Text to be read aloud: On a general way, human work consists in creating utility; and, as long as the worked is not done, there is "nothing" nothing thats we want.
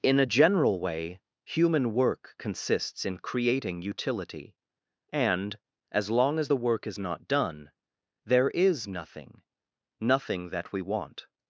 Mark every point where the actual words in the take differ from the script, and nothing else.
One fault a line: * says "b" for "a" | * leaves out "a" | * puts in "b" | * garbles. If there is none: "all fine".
* says "In" for "On"
* says "work" for "worked"
* says "that" for "thats"